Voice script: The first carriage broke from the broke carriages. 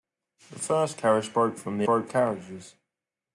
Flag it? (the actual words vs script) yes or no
no